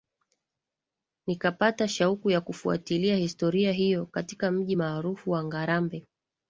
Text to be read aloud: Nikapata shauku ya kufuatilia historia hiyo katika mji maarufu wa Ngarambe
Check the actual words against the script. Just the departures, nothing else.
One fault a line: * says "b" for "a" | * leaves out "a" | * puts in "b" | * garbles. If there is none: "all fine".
all fine